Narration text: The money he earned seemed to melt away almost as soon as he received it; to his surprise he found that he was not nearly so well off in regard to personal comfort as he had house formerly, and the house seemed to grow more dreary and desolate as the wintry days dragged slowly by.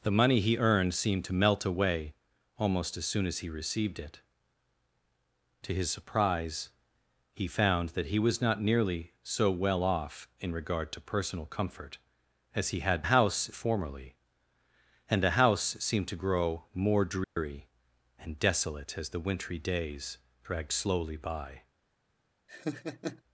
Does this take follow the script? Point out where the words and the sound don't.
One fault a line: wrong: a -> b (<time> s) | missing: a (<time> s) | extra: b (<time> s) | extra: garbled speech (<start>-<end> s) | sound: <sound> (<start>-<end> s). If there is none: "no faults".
sound: dropout (17.2-17.4 s)
sound: laugh (22.5-23.2 s)